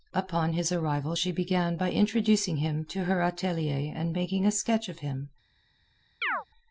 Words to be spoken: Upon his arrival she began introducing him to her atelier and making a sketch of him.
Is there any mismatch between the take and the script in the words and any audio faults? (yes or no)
yes